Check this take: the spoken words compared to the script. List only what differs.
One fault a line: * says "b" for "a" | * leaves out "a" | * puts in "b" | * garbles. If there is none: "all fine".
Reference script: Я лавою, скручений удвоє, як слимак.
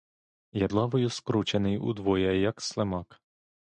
all fine